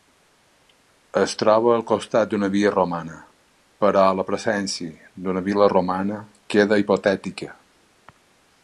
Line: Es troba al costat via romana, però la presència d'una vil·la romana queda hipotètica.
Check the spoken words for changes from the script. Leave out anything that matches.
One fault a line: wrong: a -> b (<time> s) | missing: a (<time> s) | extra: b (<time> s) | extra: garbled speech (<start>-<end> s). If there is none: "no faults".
extra: d'una (2.3 s)